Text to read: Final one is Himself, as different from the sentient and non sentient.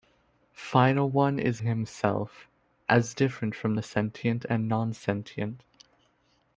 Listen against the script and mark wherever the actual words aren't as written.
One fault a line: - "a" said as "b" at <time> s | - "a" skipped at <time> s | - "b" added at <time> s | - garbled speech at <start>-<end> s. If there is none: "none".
none